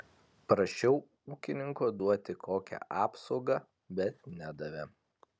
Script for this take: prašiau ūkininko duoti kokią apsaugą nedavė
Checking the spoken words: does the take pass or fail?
fail